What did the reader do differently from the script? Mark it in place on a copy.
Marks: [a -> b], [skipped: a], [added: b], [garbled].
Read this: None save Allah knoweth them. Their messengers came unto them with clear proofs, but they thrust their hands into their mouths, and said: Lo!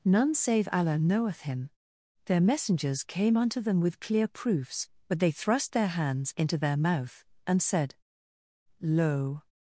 None save Allah knoweth [them. -> him] Their messengers came unto them with clear proofs, but they thrust their hands into their [mouths, -> mouth] and said: Lo!